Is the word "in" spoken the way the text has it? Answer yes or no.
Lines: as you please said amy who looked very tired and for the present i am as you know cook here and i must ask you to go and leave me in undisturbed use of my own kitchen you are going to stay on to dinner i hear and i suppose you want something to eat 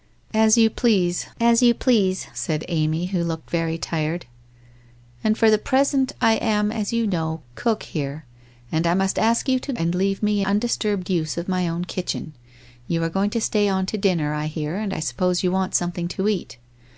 no